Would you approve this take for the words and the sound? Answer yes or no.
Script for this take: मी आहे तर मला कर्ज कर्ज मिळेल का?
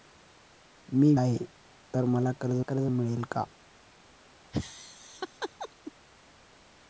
no